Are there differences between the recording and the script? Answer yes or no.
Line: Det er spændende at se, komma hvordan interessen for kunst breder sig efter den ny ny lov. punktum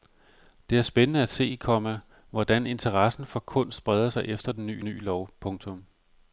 no